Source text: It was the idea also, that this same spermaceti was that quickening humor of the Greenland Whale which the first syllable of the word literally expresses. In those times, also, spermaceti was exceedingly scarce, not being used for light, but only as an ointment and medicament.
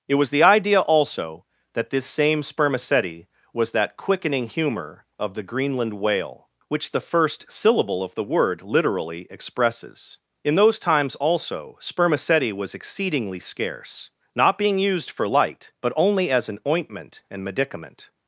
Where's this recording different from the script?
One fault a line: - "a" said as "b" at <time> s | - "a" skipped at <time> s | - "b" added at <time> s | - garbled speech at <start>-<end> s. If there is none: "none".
none